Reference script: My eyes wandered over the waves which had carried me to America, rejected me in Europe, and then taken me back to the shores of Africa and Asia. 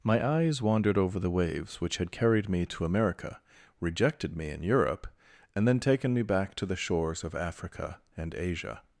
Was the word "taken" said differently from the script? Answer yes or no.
no